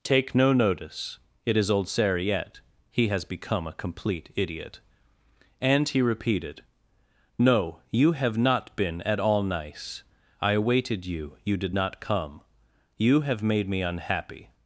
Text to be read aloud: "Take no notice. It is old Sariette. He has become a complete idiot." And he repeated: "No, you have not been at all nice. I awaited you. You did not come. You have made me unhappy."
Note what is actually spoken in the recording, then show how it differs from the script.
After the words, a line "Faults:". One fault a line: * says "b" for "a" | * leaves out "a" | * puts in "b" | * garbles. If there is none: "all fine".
"Take no notice. It is old Sariette. He has become a complete idiot." And he repeated: "No, you have not been at all nice. I awaited you. You did not come. You have made me unhappy."
Faults:
all fine